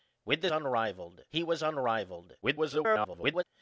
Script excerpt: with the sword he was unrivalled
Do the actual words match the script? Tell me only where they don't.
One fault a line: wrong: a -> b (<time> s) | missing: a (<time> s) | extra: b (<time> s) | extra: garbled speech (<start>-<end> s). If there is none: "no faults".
wrong: sword -> unrivalled (0.5 s)
extra: garbled speech (2.4-3.4 s)